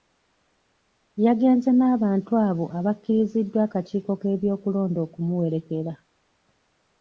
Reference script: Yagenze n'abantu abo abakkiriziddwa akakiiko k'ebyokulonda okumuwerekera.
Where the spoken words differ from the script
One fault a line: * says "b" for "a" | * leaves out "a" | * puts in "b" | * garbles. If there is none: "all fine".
all fine